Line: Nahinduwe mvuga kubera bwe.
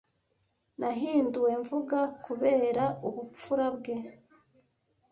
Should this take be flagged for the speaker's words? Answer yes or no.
yes